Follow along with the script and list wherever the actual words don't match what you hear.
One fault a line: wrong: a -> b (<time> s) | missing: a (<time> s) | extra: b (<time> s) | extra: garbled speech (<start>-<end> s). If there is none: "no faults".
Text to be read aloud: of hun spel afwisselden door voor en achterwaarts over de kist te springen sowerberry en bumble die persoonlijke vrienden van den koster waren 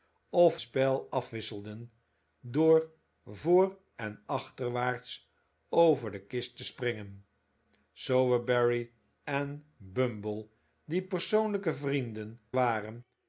missing: hun (0.6 s)
missing: van den koster (12.4 s)